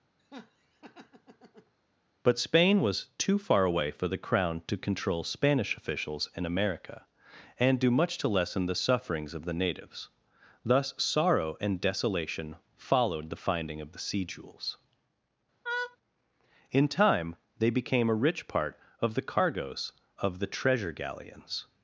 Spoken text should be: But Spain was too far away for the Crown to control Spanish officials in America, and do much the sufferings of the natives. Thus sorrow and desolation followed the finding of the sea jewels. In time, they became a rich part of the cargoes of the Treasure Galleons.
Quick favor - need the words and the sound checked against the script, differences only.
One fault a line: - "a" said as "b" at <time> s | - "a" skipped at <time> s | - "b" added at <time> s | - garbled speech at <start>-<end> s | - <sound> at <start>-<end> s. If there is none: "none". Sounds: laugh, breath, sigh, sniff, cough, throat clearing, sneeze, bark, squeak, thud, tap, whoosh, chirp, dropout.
- laugh at 0.2-1.7 s
- "to lessen" added at 8.2 s
- laugh at 15.6-16.0 s